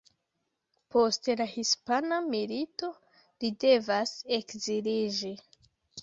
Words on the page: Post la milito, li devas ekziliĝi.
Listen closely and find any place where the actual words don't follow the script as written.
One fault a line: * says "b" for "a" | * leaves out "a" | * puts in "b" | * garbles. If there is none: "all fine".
* puts in "hispana"